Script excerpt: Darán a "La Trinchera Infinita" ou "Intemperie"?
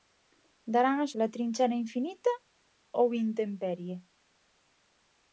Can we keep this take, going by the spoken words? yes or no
yes